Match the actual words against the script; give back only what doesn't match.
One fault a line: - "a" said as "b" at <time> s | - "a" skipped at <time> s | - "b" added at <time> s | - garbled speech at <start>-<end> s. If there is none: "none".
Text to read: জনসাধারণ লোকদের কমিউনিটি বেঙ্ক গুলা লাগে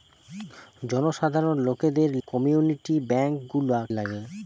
none